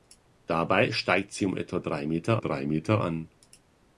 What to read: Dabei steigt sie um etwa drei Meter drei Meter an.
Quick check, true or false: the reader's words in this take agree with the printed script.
true